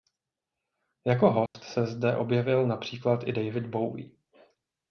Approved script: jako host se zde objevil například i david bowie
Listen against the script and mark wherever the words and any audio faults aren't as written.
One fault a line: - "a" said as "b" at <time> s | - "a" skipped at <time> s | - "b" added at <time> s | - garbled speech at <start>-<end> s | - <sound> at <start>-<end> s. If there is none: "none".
- dropout at 1.5-1.5 s